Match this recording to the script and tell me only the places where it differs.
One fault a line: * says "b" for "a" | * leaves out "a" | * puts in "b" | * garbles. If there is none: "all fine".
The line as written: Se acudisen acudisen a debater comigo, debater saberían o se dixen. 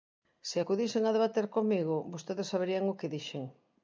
* leaves out "acudisen"
* says "vostedes" for "debater"
* says "que" for "se"